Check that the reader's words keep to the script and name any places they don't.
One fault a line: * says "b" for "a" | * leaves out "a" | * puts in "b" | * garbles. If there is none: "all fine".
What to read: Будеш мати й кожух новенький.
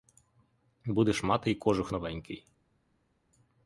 all fine